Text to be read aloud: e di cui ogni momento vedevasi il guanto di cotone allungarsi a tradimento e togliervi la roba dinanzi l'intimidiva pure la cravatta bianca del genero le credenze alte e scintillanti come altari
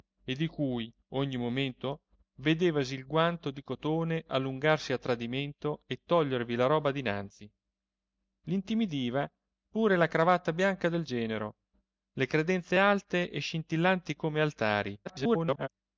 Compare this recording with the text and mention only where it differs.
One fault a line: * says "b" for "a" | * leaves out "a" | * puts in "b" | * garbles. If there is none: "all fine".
* garbles